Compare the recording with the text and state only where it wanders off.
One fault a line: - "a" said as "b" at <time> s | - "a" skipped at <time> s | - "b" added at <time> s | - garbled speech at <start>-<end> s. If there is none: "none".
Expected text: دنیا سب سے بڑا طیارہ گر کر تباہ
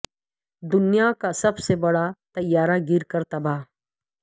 - "کا" added at 1.2 s